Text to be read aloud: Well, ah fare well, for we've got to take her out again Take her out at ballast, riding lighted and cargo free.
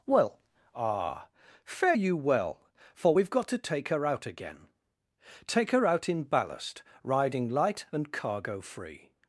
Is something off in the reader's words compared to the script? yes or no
yes